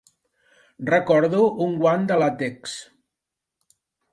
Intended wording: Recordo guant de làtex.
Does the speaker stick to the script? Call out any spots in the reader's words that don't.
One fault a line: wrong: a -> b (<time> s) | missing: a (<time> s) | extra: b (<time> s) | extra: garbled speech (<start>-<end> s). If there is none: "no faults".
extra: un (1.6 s)